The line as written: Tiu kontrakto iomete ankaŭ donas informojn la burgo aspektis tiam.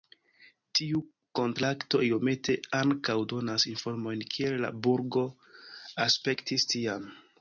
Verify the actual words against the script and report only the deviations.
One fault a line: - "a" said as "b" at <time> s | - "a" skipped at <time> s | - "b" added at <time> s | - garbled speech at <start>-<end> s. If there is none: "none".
- "kiel" added at 4.4 s